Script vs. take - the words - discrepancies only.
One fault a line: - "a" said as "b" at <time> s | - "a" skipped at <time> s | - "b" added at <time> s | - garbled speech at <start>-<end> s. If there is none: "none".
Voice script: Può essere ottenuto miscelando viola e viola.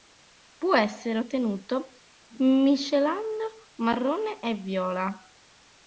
- "viola" said as "marrone" at 3.8 s